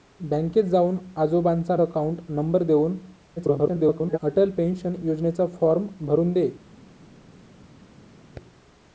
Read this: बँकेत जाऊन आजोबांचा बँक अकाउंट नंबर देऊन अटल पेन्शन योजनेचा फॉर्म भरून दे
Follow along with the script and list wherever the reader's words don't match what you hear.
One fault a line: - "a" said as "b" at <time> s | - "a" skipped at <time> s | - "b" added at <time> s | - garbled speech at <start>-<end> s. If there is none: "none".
- "बँक" skipped at 1.8 s
- garbled speech at 3.4-4.2 s